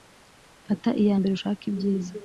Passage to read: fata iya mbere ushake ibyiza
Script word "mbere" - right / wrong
right